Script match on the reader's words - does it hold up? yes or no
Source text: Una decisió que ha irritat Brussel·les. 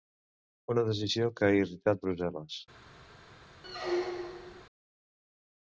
yes